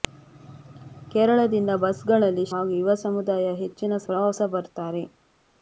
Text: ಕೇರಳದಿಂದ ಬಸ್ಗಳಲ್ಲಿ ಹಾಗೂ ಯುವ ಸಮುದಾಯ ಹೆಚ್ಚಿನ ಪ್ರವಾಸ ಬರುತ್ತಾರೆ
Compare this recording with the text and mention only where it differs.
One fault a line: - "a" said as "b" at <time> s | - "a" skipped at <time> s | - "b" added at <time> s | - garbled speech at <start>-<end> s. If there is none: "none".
none